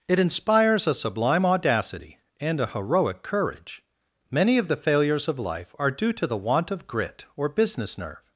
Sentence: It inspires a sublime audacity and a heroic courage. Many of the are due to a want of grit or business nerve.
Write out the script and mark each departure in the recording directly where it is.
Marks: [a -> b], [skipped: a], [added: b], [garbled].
It inspires a sublime audacity and a heroic courage. Many of the [added: failures of life] are due to [a -> the] want of grit or business nerve.